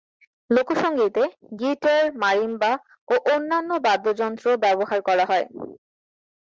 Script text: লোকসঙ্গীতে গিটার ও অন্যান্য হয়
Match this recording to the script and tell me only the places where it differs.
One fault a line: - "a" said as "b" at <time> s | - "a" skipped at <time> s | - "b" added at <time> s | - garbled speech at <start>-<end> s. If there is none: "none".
- "মারিম্বা" added at 2.2 s
- "বাদ্যযন্ত্র ব্যবহার করা" added at 3.9 s